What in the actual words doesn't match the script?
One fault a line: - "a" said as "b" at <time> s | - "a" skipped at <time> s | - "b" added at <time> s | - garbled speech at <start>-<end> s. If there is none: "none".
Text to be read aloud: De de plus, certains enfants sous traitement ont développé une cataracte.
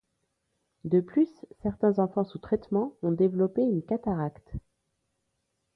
- "de" skipped at 1.0 s